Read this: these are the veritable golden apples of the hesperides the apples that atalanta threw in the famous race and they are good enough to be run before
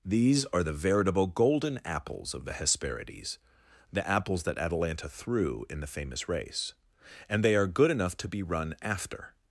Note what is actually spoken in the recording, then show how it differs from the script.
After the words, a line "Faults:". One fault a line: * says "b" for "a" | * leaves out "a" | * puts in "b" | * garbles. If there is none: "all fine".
these are the veritable golden apples of the hesperides the apples that atalanta threw in the famous race and they are good enough to be run after
Faults:
* says "after" for "before"